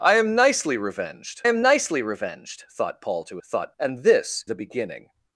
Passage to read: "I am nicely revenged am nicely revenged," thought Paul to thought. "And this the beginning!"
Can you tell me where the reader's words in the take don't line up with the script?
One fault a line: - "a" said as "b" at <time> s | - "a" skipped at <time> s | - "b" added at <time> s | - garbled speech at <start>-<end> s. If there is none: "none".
none